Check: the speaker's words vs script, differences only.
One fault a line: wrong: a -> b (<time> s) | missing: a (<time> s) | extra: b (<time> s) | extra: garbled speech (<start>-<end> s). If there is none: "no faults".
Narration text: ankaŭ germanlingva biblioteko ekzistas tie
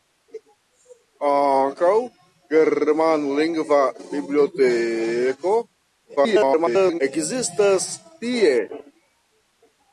extra: garbled speech (6.2-7.0 s)